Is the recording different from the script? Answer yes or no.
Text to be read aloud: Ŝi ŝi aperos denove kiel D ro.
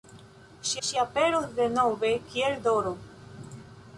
no